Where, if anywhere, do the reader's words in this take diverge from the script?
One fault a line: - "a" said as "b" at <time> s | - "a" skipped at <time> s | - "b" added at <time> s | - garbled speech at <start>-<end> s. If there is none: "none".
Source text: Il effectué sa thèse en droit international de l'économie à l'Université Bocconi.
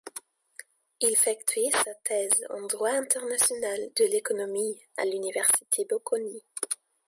none